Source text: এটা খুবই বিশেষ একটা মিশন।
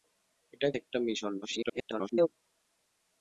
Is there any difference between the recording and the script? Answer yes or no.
yes